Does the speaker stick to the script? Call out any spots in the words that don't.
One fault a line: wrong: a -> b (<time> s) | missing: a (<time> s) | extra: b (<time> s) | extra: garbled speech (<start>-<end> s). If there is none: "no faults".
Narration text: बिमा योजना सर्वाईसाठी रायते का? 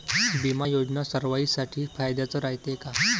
extra: फायद्याचं (2.0 s)